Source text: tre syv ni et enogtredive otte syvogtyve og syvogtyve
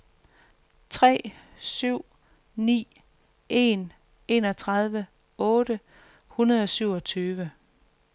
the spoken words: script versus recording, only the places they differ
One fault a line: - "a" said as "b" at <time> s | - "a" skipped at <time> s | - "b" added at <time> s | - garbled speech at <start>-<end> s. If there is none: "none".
- "et" said as "en" at 3.5 s
- "syvogtyve" said as "hundrede" at 6.3 s